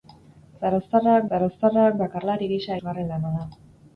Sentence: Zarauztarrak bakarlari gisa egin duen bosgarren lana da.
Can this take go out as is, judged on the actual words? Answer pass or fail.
fail